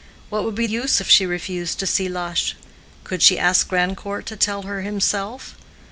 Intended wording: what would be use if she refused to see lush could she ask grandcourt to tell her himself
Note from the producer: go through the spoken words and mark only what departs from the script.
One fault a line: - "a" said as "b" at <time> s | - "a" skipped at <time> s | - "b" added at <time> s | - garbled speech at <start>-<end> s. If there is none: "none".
none